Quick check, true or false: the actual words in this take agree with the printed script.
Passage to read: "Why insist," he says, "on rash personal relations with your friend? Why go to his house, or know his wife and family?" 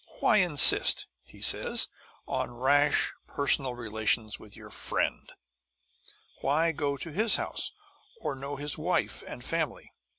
true